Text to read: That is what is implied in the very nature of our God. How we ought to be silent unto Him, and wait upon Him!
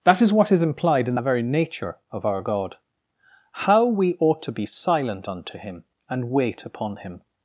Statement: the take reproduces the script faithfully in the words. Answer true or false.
true